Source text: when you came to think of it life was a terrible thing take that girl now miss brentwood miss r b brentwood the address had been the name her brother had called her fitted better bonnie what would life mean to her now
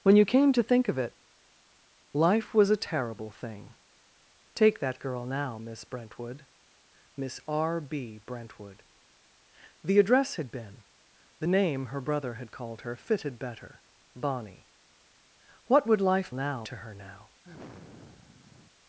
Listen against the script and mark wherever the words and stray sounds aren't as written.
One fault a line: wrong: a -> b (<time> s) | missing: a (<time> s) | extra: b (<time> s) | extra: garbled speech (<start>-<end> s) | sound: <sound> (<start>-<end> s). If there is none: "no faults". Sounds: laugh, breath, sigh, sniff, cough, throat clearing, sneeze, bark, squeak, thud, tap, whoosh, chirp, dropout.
wrong: mean -> now (16.3 s)
sound: sigh (17.4-18.7 s)